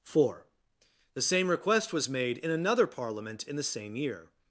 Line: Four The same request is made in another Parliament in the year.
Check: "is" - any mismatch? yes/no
yes